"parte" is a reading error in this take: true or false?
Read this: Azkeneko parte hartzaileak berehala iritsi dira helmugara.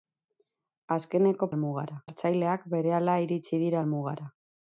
true